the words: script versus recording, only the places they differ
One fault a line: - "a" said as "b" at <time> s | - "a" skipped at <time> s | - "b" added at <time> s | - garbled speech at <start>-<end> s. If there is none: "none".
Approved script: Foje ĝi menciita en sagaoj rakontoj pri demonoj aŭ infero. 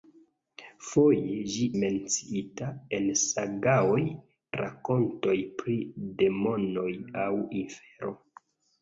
none